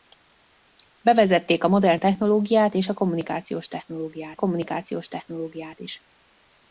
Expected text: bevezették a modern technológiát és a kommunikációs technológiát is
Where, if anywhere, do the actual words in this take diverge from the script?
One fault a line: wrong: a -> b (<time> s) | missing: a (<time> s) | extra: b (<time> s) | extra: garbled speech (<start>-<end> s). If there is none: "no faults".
extra: kommunikációs technológiát (4.3 s)